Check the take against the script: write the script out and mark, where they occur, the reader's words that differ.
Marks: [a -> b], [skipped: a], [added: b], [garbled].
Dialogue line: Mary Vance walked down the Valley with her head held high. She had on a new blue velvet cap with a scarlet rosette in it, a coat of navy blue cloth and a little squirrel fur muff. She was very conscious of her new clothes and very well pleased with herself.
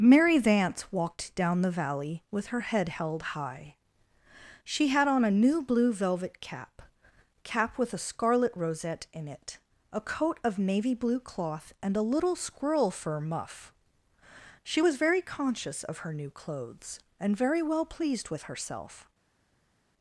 Mary Vance walked down the Valley with her head held high. She had on a new blue velvet cap [added: cap] with a scarlet rosette in it, a coat of navy blue cloth and a little squirrel fur muff. She was very conscious of her new clothes and very well pleased with herself.